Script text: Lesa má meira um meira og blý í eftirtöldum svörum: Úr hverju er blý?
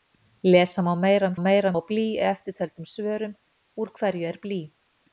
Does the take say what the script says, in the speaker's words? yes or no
yes